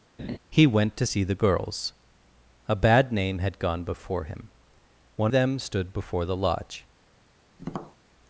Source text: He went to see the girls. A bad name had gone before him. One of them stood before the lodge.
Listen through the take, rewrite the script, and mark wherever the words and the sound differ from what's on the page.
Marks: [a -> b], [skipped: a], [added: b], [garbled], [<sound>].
[laugh] He went to see the girls. A bad name had gone before him. One [skipped: of] them stood before the lodge. [tap]